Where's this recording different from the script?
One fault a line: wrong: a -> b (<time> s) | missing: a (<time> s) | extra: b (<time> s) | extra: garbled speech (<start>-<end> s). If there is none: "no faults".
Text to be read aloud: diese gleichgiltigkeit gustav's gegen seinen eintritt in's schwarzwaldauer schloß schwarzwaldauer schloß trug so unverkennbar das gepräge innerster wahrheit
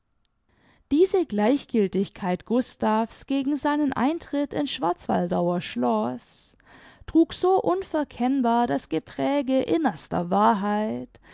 missing: schwarzwaldauer schloß (6.6 s)